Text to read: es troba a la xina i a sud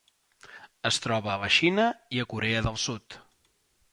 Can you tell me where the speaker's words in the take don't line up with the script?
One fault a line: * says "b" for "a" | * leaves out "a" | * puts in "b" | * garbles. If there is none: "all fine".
* puts in "corea del"